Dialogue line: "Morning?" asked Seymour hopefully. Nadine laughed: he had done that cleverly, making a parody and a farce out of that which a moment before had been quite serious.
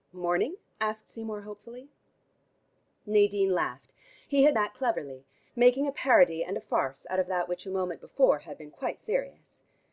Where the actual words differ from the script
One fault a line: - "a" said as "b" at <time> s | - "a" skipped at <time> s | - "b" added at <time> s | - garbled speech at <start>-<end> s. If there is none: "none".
- "done" skipped at 4.5 s